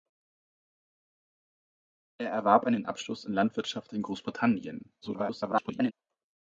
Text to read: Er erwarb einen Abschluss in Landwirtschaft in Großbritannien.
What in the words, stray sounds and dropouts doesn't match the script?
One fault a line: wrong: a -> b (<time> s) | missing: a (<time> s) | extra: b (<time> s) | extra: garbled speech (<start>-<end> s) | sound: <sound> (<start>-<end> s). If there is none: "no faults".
extra: garbled speech (5.0-5.9 s)